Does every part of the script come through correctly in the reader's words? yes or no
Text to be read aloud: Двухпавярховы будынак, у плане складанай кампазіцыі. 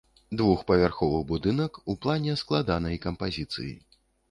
yes